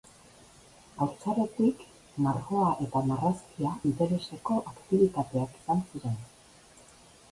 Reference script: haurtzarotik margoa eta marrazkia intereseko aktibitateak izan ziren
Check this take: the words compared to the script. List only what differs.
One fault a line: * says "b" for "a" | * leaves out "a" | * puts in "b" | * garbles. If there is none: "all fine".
all fine